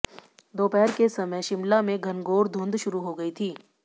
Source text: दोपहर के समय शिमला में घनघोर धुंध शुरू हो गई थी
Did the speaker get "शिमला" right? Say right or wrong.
right